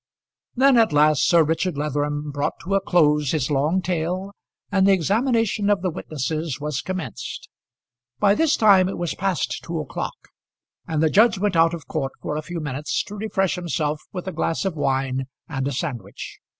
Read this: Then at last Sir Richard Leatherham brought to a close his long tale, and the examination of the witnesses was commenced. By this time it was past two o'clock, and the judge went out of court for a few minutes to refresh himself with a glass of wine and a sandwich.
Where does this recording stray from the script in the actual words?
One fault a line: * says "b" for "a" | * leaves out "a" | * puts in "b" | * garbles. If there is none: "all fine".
all fine